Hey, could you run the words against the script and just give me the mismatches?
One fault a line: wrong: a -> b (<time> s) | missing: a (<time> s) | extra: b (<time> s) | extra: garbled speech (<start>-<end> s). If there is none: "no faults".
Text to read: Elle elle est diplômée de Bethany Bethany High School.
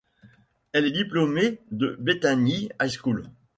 missing: elle (0.9 s)
missing: Bethany (2.7 s)